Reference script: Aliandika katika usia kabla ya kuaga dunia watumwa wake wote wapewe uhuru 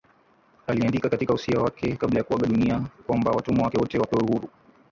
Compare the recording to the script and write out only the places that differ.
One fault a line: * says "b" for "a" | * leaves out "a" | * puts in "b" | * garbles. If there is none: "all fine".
* puts in "wake"
* puts in "kwamba"